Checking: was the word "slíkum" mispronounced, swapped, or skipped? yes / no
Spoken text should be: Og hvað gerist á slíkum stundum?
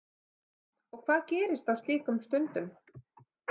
no